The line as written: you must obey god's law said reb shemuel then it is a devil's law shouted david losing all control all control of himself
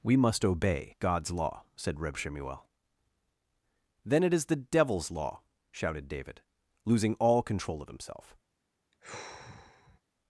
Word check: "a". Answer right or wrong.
wrong